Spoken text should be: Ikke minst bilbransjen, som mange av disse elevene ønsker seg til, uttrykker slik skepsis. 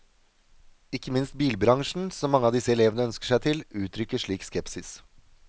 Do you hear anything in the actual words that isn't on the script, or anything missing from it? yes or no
no